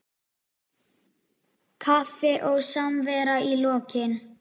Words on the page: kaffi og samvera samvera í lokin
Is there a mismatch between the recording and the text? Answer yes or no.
yes